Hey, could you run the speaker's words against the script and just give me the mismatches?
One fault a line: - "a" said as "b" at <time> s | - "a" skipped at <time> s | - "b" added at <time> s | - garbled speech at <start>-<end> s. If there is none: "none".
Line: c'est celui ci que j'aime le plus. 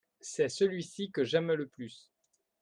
none